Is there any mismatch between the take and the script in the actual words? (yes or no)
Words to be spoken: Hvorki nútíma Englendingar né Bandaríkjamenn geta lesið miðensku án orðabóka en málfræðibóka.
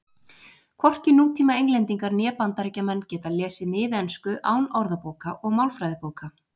yes